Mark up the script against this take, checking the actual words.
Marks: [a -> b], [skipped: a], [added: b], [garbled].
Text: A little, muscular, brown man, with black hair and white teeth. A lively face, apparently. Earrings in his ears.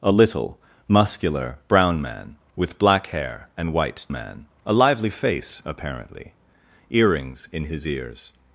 A little, muscular, brown man, with black hair and white [teeth. -> man] A lively face, apparently. Earrings in his ears.